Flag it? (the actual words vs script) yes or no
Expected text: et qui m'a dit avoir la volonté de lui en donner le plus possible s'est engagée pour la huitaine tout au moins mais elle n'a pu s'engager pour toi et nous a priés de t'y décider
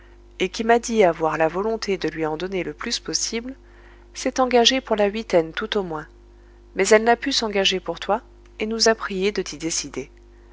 no